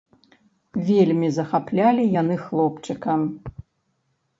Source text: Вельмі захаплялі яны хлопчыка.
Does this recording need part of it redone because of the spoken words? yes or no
no